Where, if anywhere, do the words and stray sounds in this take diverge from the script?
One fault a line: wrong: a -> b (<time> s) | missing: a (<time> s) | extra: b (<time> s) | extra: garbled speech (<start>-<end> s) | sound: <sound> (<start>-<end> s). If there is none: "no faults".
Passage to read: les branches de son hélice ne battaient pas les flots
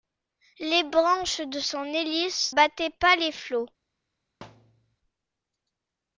missing: ne (2.5 s)
sound: thud (4.4-5.0 s)